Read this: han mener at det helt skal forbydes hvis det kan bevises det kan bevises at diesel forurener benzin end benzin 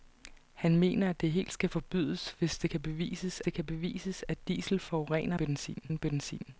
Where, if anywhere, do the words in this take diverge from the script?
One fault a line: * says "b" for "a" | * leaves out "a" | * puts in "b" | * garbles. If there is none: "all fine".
all fine